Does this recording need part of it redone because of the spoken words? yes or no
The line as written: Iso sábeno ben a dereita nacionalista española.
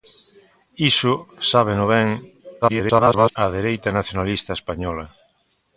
yes